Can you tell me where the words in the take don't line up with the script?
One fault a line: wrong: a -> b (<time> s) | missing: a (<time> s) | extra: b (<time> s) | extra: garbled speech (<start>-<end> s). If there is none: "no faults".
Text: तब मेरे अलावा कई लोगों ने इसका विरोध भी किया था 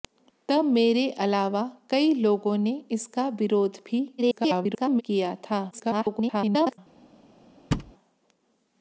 extra: garbled speech (4.2-5.0 s)
extra: garbled speech (5.7-6.8 s)